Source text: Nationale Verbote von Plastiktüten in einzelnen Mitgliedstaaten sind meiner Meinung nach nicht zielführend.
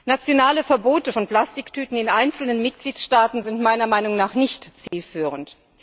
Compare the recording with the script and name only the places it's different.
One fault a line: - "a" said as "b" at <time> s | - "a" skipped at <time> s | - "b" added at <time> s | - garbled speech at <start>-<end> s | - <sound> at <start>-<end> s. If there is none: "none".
- dropout at 4.9-4.9 s